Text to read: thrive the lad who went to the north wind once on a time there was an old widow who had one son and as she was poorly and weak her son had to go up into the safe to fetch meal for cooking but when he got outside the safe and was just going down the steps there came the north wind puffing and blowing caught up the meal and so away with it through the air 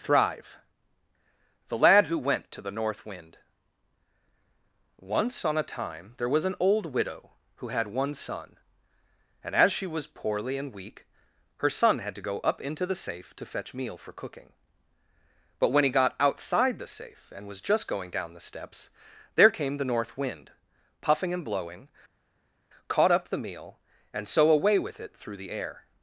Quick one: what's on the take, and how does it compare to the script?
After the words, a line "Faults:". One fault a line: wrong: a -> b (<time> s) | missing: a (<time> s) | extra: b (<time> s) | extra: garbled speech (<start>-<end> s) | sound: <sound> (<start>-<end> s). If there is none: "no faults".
thrive the lad who went to the north wind once on a time there was an old widow who had one son and as she was poorly and weak her son had to go up into the safe to fetch meal for cooking but when he got outside the safe and was just going down the steps there came the north wind puffing and blowing caught up the meal and so away with it through the air
Faults:
no faults